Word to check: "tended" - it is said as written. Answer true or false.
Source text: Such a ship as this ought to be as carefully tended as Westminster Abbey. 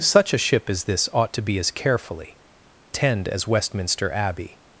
false